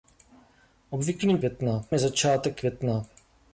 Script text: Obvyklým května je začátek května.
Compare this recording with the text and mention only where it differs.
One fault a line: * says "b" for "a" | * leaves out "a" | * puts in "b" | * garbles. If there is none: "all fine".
all fine